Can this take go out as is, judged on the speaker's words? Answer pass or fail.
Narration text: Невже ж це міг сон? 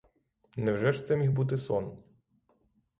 fail